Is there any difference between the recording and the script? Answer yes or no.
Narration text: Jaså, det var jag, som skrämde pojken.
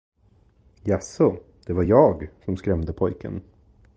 no